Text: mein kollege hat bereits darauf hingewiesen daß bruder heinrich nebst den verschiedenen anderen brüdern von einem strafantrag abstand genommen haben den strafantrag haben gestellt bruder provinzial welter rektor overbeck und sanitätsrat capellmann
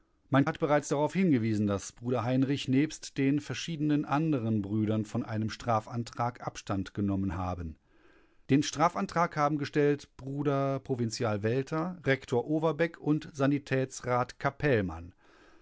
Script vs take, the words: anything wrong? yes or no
yes